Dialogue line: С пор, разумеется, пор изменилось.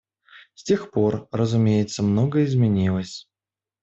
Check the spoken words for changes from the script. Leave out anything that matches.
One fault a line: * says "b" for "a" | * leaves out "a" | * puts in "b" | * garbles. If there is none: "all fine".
* puts in "тех"
* says "многое" for "пор"